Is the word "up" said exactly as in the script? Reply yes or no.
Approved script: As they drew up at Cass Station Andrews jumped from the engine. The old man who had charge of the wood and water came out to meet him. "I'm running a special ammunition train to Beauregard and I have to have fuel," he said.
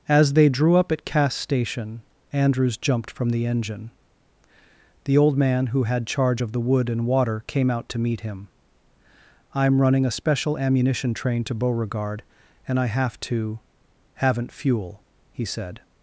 yes